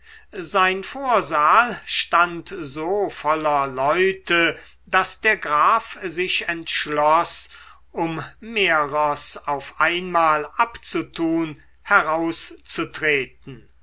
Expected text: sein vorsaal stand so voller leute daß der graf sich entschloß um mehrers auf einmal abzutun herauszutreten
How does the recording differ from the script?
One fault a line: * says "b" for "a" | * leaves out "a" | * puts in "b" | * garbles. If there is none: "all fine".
all fine